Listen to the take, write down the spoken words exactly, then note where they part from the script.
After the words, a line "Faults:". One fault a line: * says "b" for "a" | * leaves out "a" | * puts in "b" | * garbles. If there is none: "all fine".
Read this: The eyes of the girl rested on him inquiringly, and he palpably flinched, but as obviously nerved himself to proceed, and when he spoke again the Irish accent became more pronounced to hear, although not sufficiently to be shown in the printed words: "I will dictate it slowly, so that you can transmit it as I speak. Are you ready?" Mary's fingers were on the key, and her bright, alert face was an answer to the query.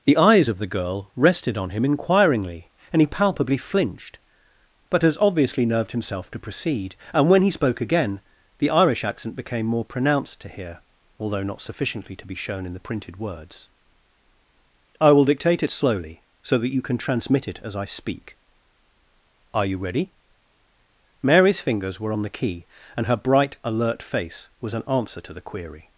The eyes of the girl rested on him inquiringly, and he palpably flinched, but as obviously nerved himself to proceed, and when he spoke again the Irish accent became more pronounced to hear, although not sufficiently to be shown in the printed words: "I will dictate it slowly, so that you can transmit it as I speak. Are you ready?" Mary's fingers were on the key, and her bright, alert face was an answer to the query.
Faults:
all fine